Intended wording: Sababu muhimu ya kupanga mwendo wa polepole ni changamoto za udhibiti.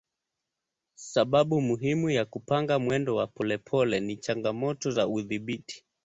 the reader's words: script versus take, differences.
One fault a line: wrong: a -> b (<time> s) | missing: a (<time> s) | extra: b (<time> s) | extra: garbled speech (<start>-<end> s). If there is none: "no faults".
no faults